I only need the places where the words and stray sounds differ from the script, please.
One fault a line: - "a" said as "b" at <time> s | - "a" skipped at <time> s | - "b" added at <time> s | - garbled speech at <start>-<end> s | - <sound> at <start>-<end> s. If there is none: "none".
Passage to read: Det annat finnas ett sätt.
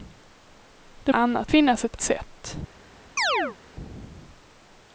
- chirp at 3.2-3.6 s